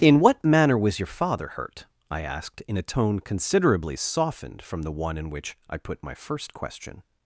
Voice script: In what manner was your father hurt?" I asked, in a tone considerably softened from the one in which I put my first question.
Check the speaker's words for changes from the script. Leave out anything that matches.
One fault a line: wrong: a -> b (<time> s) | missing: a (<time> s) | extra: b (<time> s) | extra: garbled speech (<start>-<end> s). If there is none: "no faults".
no faults